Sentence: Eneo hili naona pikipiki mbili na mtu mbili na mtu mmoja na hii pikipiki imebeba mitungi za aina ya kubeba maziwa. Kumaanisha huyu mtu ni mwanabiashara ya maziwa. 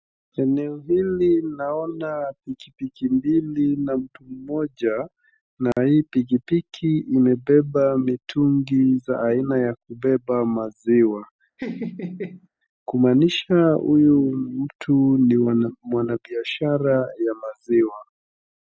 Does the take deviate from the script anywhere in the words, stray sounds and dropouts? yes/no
yes